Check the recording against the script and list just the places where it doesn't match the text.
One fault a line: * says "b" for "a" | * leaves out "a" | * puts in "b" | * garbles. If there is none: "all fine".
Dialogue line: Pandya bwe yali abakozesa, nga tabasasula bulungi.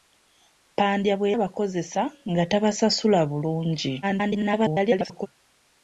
* leaves out "yali"
* garbles